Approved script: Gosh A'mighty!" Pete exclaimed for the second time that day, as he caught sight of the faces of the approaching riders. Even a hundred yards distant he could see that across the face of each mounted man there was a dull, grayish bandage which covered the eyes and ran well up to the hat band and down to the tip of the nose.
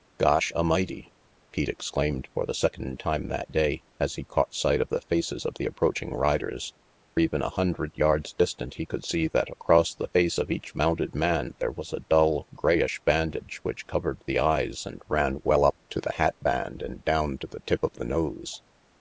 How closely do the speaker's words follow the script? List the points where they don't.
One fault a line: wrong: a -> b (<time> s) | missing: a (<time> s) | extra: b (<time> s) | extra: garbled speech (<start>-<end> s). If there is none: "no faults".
no faults